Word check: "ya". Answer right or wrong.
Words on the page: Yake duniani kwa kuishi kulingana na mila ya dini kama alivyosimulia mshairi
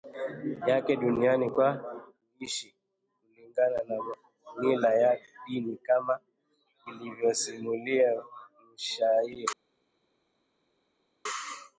right